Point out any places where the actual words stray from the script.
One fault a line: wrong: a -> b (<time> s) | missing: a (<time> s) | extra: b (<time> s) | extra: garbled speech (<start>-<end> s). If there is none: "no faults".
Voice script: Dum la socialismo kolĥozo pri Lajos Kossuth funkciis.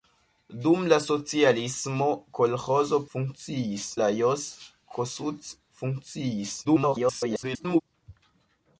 wrong: pri -> funkciis (3.2 s)
extra: garbled speech (6.6-7.8 s)